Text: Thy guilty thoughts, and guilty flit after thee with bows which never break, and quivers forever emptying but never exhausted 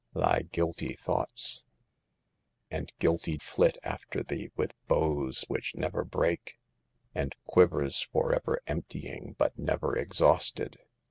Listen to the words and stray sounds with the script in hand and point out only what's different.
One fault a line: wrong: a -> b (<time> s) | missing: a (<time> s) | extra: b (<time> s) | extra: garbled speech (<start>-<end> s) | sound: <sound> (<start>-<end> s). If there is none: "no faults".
no faults